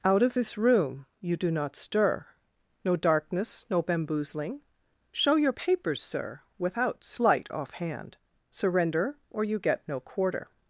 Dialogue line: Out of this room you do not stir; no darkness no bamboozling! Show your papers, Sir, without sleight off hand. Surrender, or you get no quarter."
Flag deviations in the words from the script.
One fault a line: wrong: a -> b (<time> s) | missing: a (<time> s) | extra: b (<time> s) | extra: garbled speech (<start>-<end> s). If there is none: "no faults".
no faults